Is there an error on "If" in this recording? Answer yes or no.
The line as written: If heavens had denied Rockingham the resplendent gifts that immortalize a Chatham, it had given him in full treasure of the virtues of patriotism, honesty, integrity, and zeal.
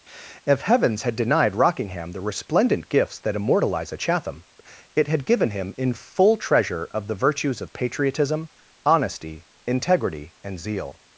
no